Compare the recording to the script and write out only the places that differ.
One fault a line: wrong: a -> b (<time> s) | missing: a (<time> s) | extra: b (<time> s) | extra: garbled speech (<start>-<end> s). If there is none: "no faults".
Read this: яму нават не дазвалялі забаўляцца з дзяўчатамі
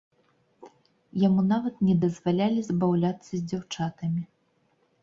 no faults